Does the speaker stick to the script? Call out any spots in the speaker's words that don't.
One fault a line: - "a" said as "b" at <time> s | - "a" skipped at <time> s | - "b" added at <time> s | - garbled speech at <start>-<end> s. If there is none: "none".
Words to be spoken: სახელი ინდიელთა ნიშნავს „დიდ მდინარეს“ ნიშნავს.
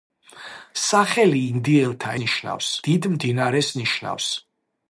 none